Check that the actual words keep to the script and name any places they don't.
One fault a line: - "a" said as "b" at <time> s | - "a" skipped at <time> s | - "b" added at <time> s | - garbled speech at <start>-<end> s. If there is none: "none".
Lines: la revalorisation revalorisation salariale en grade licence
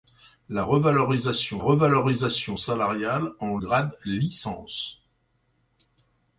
none